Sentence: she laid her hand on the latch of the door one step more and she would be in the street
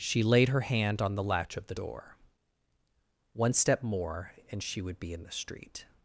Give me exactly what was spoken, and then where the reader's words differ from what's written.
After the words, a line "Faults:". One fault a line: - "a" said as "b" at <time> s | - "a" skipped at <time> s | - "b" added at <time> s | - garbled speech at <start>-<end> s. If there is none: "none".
she laid her hand on the latch of the door one step more and she would be in the street
Faults:
none